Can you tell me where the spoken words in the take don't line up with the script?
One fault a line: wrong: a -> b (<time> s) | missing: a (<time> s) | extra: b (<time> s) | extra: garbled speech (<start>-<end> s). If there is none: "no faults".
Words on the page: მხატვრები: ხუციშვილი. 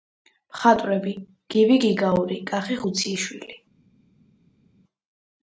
extra: გივი გიგაური კახი (1.6 s)